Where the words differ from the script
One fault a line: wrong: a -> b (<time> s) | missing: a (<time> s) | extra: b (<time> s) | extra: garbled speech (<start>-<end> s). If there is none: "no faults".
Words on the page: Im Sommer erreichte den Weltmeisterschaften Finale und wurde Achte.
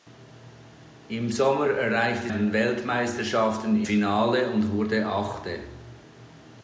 no faults